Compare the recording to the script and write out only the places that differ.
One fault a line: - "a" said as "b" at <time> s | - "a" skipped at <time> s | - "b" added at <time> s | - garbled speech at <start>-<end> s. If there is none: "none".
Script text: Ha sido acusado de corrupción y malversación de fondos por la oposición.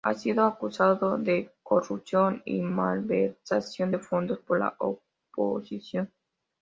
none